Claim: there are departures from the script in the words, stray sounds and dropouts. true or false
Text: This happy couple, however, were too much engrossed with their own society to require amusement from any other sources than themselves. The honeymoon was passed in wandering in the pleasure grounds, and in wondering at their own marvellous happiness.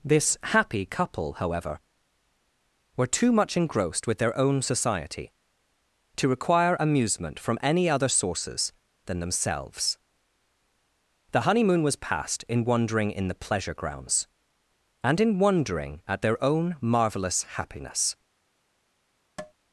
true